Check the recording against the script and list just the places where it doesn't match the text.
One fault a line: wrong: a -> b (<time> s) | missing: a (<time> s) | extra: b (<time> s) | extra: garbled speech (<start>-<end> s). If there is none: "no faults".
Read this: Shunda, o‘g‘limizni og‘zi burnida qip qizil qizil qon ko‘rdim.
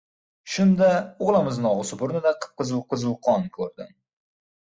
no faults